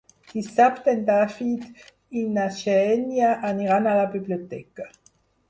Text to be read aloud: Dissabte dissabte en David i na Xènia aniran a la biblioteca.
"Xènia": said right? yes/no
yes